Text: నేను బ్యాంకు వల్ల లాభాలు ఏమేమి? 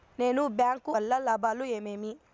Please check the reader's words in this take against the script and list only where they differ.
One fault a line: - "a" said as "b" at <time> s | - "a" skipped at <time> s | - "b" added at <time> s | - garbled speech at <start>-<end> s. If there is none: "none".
none